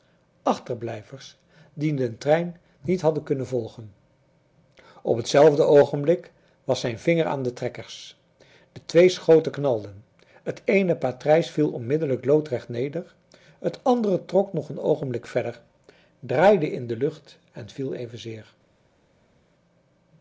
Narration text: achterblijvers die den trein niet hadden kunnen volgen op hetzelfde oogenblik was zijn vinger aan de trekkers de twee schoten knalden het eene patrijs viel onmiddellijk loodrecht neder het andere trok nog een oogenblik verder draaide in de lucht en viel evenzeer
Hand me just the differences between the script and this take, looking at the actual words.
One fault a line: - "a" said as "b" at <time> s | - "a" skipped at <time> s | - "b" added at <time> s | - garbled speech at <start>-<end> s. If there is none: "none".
none